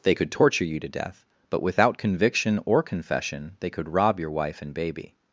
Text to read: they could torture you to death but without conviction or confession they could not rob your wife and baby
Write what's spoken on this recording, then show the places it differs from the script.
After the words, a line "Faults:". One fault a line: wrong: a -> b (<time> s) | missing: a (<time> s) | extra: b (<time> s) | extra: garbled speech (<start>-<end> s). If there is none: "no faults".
they could torture you to death but without conviction or confession they could rob your wife and baby
Faults:
missing: not (3.9 s)